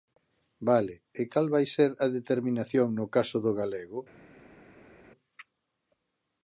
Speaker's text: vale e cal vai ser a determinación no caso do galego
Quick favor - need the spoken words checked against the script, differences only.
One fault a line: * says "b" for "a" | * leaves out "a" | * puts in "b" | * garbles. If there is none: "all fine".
all fine